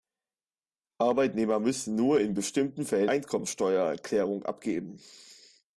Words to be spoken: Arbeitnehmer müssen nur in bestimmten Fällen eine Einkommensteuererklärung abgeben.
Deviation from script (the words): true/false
true